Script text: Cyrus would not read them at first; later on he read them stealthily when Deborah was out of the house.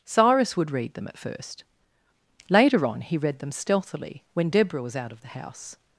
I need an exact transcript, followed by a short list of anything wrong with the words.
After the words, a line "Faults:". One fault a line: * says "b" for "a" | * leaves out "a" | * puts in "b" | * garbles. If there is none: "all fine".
Cyrus would read them at first; later on he read them stealthily when Deborah was out of the house.
Faults:
* leaves out "not"